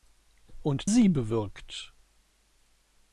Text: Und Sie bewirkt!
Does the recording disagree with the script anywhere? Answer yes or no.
no